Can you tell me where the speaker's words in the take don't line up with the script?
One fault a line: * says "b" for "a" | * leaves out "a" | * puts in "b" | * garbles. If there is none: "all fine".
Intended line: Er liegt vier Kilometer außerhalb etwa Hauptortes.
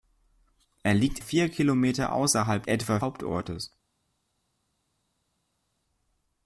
all fine